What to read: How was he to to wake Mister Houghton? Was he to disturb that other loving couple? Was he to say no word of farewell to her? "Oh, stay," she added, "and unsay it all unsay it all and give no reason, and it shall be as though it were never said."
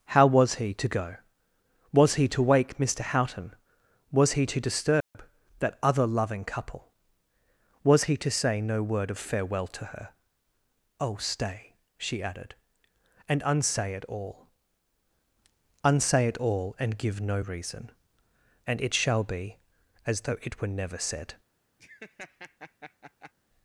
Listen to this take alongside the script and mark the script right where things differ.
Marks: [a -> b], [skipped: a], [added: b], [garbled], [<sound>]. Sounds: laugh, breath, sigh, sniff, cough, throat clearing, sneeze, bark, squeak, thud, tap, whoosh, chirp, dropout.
How was he to [added: go Was he] to wake Mister Houghton? Was he to disturb [dropout] that other loving couple? Was he to say no word of farewell to her? "Oh, stay," she added, "and unsay it all unsay it all and give no reason, and it shall be as though it were never said." [laugh]